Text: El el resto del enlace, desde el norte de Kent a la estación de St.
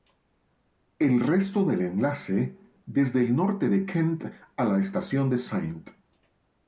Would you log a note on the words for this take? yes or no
yes